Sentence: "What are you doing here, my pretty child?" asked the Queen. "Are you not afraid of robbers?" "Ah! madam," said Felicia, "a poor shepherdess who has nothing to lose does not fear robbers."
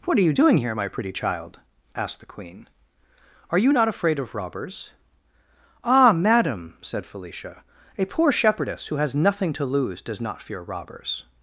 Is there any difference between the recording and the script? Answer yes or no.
no